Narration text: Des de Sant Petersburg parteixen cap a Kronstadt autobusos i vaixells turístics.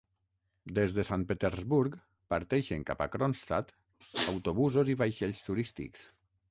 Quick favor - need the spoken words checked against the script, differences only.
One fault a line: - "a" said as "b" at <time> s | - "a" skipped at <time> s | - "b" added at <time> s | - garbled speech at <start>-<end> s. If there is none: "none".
none